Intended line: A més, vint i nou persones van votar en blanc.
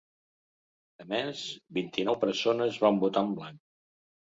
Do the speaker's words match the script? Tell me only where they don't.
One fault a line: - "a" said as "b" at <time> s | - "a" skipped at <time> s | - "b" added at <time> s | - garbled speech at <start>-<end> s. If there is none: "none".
none